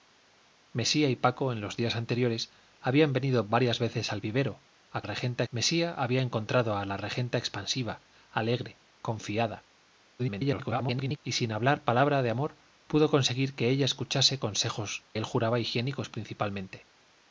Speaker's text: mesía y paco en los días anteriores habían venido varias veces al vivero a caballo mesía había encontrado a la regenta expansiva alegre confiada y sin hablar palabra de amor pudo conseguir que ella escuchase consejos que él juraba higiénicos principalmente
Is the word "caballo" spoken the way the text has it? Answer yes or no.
no